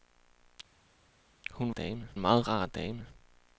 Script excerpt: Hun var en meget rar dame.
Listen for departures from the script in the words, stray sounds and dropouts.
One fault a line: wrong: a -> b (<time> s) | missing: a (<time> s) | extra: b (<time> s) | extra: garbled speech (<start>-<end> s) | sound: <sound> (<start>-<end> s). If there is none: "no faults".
wrong: var -> dame (1.7 s)